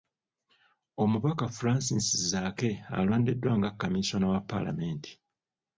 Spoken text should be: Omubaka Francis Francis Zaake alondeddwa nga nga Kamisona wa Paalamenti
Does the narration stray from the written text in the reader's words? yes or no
yes